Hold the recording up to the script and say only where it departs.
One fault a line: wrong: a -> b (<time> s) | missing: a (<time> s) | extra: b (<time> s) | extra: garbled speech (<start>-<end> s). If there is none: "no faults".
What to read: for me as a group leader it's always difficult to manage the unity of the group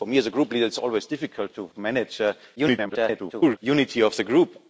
extra: garbled speech (2.6-3.6 s)